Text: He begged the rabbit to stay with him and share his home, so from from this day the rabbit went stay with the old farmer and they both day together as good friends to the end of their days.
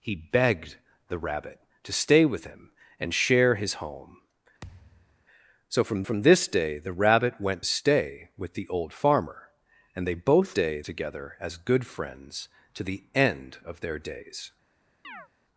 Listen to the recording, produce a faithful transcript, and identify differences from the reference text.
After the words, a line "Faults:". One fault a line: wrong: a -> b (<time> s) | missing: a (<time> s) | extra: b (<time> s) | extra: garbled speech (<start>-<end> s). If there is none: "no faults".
He begged the rabbit to stay with him and share his home, so from from this day the rabbit went stay with the old farmer and they both day together as good friends to the end of their days.
Faults:
no faults